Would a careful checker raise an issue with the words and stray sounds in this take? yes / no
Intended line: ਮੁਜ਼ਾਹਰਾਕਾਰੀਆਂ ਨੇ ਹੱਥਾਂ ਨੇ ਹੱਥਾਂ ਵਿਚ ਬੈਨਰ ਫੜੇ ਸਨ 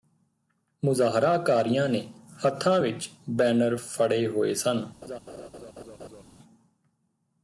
yes